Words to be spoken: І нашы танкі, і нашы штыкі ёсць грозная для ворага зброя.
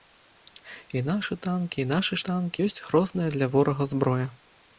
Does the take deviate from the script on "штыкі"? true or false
true